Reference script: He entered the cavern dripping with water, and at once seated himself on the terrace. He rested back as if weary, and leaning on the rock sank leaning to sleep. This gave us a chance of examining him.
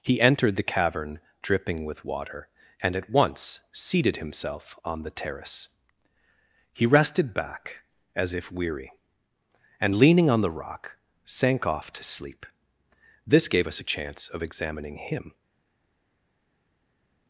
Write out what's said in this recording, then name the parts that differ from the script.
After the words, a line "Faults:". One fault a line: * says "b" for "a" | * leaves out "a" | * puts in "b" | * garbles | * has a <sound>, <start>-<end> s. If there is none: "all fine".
He entered the cavern dripping with water, and at once seated himself on the terrace. He rested back as if weary, and leaning on the rock sank off to sleep. This gave us a chance of examining him.
Faults:
* says "off" for "leaning"